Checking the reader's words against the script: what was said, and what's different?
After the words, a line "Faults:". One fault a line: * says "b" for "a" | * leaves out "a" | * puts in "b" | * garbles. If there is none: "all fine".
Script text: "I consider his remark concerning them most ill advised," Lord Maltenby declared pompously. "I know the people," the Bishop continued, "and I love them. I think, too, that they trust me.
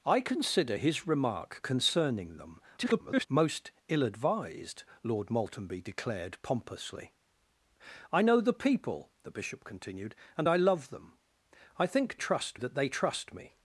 "I consider his remark concerning them [garbled] most ill advised," Lord Maltenby declared pompously. "I know the people," the Bishop continued, "and I love them. I think, trust, that they trust me.
Faults:
* garbles
* says "trust" for "too"